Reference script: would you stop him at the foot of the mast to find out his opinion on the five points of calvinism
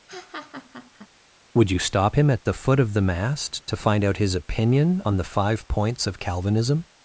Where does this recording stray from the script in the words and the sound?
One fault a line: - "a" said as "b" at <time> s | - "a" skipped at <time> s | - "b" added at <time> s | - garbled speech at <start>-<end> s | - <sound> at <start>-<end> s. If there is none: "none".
- laugh at 0.1-1.1 s